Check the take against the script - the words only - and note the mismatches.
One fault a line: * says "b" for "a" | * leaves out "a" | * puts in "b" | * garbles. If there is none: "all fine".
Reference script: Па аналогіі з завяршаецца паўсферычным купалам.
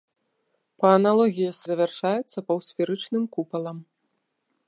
all fine